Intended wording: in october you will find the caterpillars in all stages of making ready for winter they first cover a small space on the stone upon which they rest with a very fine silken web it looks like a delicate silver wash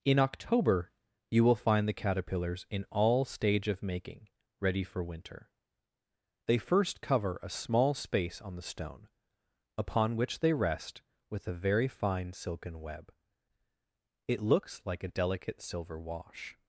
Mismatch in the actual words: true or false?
true